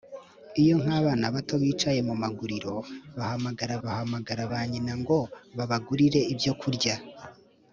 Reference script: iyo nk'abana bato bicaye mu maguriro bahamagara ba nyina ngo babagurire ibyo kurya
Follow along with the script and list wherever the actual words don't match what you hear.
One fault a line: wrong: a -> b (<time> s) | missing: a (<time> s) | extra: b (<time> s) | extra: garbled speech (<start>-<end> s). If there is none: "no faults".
extra: bahamagara (3.8 s)